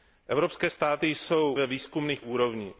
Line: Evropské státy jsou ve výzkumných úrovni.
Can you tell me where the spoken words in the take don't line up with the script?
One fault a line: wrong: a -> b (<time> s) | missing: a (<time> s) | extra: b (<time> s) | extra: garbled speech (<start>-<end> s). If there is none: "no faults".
no faults